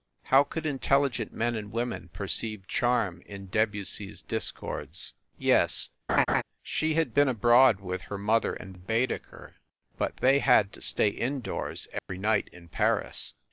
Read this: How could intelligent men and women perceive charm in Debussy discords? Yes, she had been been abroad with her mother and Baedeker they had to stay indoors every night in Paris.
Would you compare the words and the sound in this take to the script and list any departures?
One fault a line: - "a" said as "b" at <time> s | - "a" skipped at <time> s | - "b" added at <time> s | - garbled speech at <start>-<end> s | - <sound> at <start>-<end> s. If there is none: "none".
- "s" added at 4.1 s
- laugh at 6.1-6.4 s
- "been" skipped at 7.3 s
- "but" added at 10.0 s
- dropout at 12.0-12.1 s